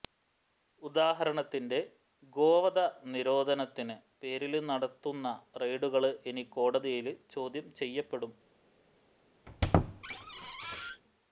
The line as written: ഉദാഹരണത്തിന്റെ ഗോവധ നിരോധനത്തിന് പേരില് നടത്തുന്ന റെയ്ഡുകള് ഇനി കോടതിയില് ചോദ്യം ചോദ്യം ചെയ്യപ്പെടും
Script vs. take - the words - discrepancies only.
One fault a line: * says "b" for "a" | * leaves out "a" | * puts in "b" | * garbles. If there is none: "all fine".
* leaves out "ചോദ്യം"